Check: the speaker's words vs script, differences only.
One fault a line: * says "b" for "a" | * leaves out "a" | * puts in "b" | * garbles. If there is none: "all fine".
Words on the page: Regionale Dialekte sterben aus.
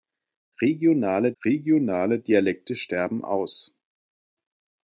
* puts in "regionale"